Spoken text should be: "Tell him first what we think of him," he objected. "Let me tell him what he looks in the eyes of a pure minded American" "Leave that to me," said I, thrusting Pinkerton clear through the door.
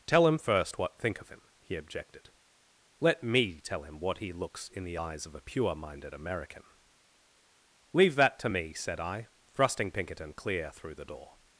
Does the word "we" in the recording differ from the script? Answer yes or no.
yes